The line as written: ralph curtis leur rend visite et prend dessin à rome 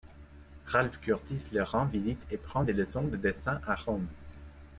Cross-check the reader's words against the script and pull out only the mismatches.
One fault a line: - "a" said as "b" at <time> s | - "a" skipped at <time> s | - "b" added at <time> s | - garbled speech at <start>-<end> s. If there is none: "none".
- "des leçons de" added at 2.6 s